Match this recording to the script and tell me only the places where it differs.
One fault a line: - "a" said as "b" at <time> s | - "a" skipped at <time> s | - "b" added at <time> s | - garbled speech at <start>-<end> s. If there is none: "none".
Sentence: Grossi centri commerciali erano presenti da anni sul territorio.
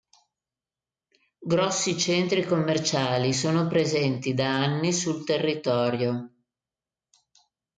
- "erano" said as "sono" at 3.3 s